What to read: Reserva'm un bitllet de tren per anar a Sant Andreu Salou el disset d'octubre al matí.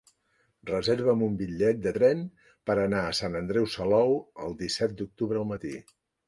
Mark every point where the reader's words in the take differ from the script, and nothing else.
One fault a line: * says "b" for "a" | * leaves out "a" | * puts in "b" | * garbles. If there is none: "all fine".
all fine